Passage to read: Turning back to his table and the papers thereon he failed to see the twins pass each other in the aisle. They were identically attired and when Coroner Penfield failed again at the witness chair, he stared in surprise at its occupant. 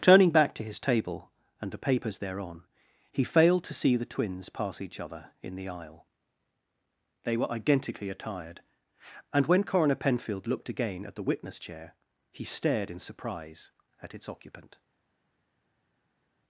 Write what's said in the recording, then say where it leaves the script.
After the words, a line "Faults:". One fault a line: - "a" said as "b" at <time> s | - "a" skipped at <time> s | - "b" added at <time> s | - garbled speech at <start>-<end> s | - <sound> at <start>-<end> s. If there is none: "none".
Turning back to his table and the papers thereon he failed to see the twins pass each other in the aisle. They were identically attired and when Coroner Penfield looked again at the witness chair, he stared in surprise at its occupant.
Faults:
- "failed" said as "looked" at 10.5 s